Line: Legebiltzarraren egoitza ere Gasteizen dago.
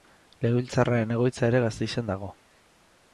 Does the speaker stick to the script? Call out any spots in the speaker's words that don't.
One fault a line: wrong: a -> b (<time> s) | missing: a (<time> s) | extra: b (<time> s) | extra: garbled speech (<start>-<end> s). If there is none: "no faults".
no faults